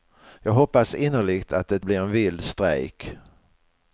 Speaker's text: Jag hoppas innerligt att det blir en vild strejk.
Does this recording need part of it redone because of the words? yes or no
no